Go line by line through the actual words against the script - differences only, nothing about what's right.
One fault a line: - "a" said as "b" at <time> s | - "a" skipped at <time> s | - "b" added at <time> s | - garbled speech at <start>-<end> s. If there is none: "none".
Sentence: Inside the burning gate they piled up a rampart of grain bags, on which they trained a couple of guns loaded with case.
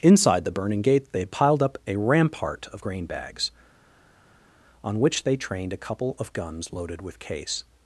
none